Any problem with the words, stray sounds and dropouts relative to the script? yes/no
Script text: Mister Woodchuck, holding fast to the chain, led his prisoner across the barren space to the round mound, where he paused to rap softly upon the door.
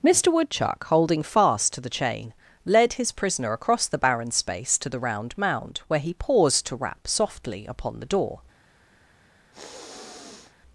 yes